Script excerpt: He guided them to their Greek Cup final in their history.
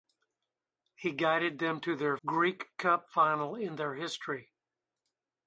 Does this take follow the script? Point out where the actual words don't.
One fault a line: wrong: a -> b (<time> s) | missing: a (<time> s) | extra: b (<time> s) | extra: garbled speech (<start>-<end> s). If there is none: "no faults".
no faults